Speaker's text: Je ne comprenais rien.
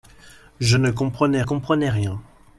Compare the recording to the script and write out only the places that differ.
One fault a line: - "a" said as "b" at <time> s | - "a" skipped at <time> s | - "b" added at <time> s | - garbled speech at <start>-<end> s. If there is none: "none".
- "comprenais" added at 1.4 s